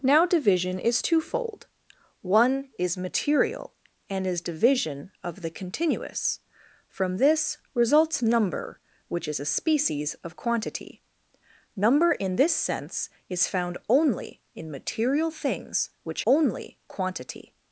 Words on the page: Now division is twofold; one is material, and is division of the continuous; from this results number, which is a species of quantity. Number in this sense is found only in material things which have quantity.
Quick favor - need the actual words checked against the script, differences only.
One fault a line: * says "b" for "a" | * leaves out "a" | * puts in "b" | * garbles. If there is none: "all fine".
* says "only" for "have"